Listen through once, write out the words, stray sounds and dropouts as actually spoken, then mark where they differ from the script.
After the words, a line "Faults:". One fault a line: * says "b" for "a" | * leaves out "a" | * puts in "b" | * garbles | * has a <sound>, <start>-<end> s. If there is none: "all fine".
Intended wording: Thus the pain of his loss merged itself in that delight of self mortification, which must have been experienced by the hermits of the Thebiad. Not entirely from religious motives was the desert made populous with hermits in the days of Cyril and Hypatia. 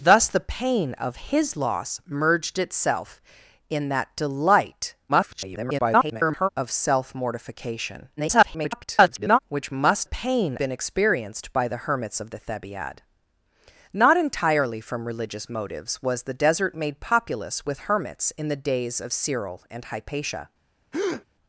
Thus the pain of his loss merged itself in that delight [garbled] of self mortification, [garbled] which must pain been experienced by the hermits of the Thebiad. Not entirely from religious motives was the desert made populous with hermits in the days of Cyril and Hypatia.
Faults:
* garbles
* garbles
* says "pain" for "have"
* has a breath, 20.9-21.2 s